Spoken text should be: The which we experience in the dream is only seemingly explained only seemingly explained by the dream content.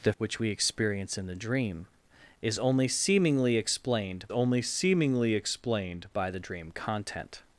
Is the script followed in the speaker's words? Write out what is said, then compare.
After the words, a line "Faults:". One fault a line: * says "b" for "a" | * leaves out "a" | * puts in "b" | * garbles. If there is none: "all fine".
The which we experience in the dream is only seemingly explained only seemingly explained by the dream content.
Faults:
all fine